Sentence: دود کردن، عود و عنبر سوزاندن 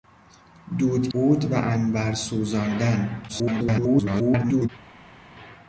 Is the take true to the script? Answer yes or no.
no